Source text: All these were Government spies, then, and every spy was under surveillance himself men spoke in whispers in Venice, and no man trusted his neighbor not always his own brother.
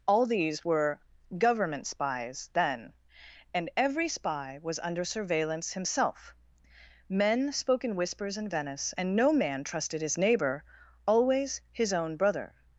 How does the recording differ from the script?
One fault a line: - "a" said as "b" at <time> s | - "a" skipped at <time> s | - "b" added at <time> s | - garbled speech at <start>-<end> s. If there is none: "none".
- "not" skipped at 10.6 s